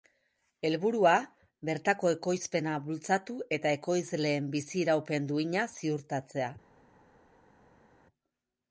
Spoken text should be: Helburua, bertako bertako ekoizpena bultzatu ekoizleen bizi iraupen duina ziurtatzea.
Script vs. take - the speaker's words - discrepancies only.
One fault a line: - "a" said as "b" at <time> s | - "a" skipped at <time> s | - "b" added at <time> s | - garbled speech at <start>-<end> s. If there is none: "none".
- "bertako" skipped at 2.1 s
- "eta" added at 3.6 s